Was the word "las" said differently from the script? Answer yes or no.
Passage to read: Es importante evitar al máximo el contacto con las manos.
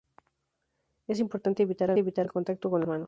yes